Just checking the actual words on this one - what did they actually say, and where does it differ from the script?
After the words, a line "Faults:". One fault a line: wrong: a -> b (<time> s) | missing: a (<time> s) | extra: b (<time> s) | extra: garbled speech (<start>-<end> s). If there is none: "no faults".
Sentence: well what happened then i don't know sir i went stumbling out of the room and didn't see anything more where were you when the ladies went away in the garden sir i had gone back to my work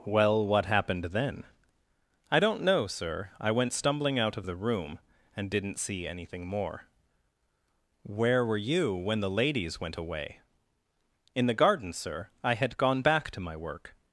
well what happened then i don't know sir i went stumbling out of the room and didn't see anything more where were you when the ladies went away in the garden sir i had gone back to my work
Faults:
no faults